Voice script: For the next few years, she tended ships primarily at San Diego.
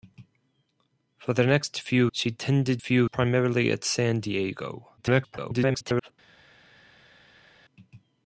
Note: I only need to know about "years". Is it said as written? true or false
false